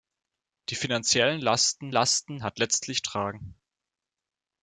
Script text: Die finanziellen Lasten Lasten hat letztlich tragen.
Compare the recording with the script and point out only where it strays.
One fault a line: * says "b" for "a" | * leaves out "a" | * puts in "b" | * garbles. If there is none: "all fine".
all fine